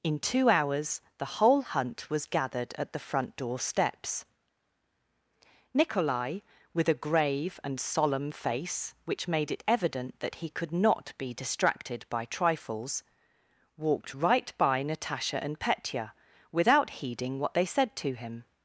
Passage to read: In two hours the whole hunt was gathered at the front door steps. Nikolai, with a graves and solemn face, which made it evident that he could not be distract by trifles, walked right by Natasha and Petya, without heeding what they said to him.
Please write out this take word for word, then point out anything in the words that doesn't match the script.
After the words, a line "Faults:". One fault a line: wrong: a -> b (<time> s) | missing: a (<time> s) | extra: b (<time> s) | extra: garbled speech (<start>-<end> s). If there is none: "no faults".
In two hours the whole hunt was gathered at the front door steps. Nikolai, with a grave and solemn face, which made it evident that he could not be distracted by trifles, walked right by Natasha and Petya, without heeding what they said to him.
Faults:
wrong: graves -> grave (7.0 s)
wrong: distract -> distracted (11.3 s)